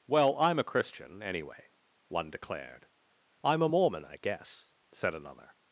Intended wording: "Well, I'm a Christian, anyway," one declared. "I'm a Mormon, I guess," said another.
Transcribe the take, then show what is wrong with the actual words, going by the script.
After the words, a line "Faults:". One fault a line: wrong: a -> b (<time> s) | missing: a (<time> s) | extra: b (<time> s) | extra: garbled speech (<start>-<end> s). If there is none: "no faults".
"Well, I'm a Christian, anyway," one declared. "I'm a Mormon, I guess," said another.
Faults:
no faults